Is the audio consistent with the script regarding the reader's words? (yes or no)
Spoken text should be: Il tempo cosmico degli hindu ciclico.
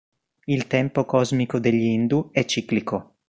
no